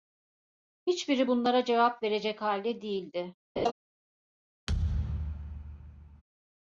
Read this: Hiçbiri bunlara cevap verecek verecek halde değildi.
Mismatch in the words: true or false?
true